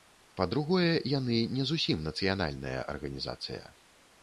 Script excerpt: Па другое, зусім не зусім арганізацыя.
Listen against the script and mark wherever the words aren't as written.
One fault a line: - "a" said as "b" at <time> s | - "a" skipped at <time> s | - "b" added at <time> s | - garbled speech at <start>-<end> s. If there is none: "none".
- "зусім" said as "яны" at 1.2 s
- "нацыянальная" added at 2.1 s